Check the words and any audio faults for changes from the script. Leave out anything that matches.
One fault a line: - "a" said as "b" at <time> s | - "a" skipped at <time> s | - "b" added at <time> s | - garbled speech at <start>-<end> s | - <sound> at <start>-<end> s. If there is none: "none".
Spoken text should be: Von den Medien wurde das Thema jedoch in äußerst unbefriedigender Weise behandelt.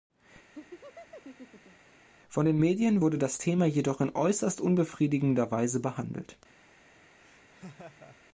- laugh at 0.5-1.9 s
- laugh at 7.2-8.2 s